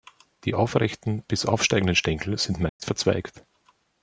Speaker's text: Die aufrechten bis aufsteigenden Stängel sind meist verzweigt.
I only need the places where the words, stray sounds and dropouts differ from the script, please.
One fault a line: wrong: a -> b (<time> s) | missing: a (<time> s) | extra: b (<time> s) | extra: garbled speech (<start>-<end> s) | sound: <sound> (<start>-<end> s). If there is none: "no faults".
sound: dropout (2.7-2.8 s)